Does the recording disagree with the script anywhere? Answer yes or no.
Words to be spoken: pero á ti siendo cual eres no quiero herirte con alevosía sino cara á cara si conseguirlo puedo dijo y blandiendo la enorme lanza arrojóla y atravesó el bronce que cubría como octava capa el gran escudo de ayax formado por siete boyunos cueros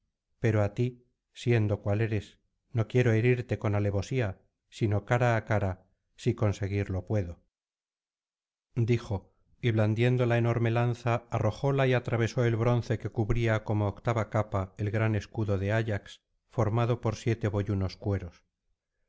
no